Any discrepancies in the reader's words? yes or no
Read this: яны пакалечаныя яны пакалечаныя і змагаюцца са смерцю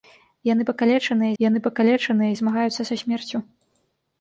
no